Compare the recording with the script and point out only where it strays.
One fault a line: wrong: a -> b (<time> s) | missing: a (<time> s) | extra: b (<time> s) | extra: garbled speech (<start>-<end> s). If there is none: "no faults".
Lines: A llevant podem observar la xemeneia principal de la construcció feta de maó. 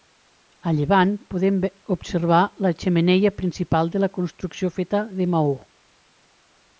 no faults